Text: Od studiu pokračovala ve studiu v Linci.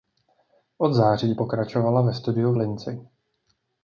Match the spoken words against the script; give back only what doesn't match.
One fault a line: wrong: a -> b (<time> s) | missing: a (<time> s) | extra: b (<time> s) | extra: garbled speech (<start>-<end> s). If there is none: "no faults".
wrong: studiu -> září (0.9 s)